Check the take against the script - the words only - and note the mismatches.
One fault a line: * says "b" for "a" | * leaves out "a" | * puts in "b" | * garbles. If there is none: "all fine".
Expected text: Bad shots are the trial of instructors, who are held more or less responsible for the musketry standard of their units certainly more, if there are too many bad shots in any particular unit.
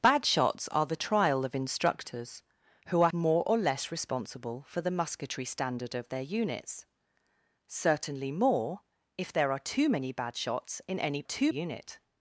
* leaves out "held"
* says "too" for "particular"